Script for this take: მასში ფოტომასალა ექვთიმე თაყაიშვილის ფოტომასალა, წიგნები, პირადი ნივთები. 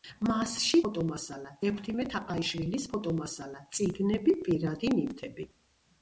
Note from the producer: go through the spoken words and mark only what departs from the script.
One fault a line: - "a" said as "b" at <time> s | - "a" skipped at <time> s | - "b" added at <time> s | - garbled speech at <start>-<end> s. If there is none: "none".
none